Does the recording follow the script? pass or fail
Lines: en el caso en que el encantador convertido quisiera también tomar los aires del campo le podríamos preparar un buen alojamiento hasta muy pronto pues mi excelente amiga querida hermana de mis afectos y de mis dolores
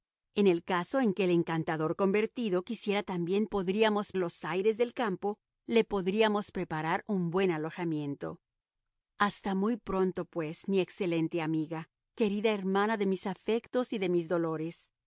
fail